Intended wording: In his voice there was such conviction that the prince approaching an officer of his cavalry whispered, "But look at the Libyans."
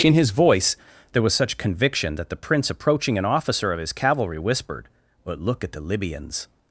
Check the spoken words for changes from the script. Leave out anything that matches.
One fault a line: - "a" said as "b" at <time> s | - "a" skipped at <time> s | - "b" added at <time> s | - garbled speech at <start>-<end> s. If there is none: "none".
none